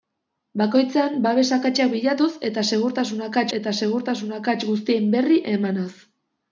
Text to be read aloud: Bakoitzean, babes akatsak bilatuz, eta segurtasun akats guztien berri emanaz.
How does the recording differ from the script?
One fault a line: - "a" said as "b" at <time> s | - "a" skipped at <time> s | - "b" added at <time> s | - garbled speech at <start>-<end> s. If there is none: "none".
- "eta segurtasun akats" added at 3.6 s